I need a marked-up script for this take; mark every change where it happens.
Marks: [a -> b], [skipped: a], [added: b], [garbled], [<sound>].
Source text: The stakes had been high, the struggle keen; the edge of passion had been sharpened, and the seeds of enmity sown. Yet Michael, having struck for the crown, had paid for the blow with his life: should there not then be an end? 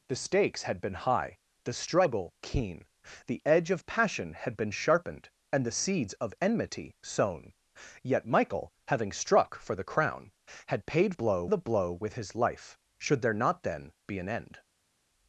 The stakes had been high, the struggle keen; the edge of passion had been sharpened, and the seeds of enmity sown. Yet Michael, having struck for the crown, had paid [for -> blow] the blow with his life: should there not then be an end?